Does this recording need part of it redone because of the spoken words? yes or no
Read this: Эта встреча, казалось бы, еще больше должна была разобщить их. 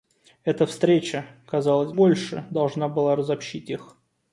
yes